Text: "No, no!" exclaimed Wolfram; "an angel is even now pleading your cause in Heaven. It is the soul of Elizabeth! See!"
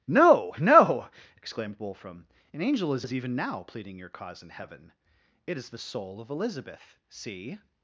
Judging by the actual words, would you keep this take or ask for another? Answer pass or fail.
fail